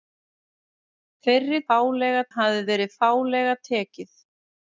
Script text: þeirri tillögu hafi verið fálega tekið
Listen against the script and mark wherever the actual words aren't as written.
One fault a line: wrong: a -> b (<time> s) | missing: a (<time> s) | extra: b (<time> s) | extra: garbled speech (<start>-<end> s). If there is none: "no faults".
wrong: tillögu -> fálega (1.7 s)